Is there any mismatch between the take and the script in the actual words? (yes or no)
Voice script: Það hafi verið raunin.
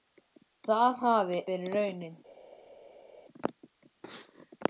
no